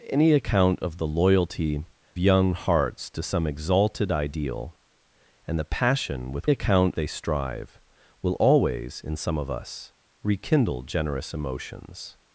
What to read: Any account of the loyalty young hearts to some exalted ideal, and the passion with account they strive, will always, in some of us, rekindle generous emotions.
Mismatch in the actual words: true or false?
false